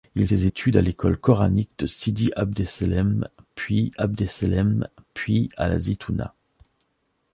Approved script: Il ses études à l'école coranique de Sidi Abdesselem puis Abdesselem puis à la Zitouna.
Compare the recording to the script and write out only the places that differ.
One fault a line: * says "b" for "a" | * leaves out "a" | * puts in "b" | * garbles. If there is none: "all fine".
all fine